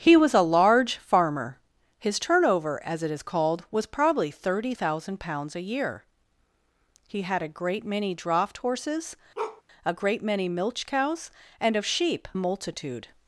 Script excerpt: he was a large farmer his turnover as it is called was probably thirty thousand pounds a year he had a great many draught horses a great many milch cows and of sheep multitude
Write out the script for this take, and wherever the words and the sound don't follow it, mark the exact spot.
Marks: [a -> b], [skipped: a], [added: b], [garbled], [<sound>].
he was a large farmer his turnover as it is called was probably thirty thousand pounds a year he had a great many draught horses [bark] a great many milch cows and of sheep multitude